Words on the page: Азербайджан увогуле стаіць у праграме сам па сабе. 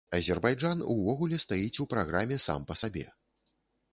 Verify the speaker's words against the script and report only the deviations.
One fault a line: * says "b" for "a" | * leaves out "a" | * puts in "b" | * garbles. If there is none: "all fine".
all fine